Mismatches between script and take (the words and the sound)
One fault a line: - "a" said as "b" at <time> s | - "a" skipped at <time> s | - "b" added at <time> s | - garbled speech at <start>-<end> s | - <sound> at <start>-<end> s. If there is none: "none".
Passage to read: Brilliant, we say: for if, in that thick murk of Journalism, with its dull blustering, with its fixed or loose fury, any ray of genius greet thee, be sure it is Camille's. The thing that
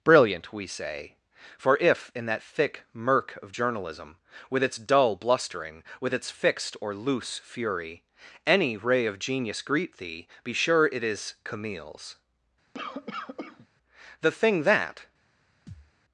- cough at 12.7-13.7 s
- thud at 15.7-15.9 s